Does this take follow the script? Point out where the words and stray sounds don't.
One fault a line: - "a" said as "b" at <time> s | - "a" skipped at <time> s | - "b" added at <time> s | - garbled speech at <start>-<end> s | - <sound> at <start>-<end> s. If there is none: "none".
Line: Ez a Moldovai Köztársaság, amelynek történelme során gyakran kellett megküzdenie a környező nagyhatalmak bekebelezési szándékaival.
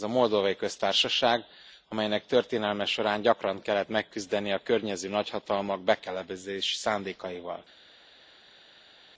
none